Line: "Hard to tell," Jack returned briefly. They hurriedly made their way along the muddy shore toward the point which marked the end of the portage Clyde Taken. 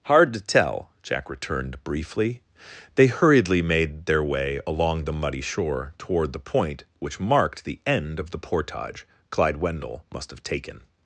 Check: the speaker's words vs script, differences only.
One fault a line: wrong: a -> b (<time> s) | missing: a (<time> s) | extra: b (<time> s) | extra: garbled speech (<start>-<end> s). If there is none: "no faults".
extra: Wendell must have (9.6 s)